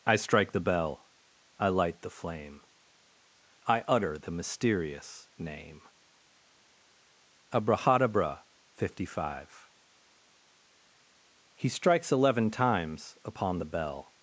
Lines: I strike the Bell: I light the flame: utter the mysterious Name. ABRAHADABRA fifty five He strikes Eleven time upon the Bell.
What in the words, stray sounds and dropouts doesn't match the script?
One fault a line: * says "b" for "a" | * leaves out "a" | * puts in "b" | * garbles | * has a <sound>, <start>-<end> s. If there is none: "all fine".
* puts in "I"
* says "times" for "time"